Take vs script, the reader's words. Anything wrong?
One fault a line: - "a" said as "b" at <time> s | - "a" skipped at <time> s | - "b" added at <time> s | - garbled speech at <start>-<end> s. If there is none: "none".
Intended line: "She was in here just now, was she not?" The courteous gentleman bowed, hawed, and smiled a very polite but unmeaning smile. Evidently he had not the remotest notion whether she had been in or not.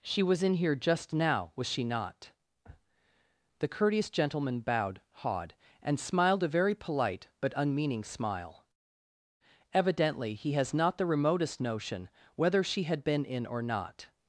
- "had" said as "has" at 10.5 s